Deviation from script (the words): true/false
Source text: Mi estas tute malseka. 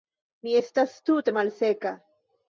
false